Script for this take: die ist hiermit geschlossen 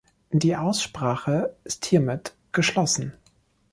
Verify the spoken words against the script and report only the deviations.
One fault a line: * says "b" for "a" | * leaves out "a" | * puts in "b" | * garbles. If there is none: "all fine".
* puts in "aussprache"